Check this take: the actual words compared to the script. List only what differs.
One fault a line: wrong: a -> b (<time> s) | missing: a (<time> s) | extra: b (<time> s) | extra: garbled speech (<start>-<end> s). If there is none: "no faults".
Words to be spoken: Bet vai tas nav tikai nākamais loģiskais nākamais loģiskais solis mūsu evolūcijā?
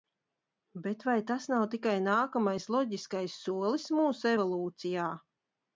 missing: nākamais loģiskais (3.4 s)